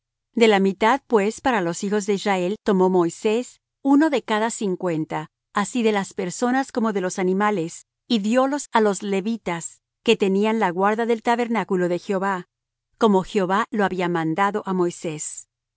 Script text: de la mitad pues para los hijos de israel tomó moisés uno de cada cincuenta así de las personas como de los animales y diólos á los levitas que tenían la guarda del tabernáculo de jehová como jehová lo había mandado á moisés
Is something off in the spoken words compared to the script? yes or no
no